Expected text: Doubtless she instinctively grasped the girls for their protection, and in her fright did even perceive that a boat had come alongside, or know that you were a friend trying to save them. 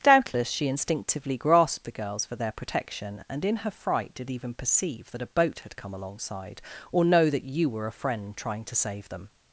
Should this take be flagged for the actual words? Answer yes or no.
no